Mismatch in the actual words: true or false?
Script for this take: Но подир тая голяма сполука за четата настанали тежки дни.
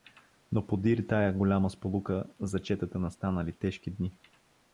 false